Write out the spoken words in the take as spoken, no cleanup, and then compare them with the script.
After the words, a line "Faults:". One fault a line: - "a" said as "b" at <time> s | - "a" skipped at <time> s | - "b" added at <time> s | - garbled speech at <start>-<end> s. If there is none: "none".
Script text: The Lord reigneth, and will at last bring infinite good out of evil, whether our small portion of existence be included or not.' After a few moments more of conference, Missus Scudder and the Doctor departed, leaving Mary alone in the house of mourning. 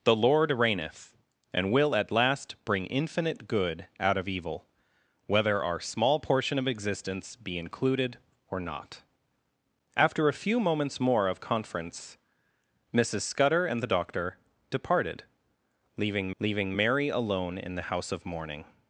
The Lord reigneth, and will at last bring infinite good out of evil, whether our small portion of existence be included or not.' After a few moments more of conference, Missus Scudder and the Doctor departed, leaving leaving Mary alone in the house of mourning.
Faults:
- "leaving" added at 16.4 s